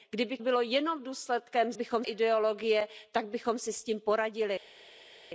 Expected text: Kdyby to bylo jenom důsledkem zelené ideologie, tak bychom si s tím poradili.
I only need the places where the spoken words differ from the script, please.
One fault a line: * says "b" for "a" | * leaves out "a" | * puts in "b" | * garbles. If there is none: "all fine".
* leaves out "to"
* says "bychom" for "zelené"